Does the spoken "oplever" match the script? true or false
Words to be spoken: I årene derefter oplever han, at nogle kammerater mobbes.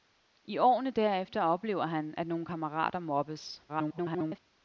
true